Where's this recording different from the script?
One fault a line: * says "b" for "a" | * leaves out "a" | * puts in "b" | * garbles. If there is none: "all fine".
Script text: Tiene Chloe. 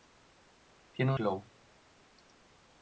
all fine